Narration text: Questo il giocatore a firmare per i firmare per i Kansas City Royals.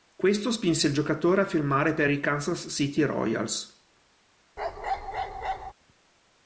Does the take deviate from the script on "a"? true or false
false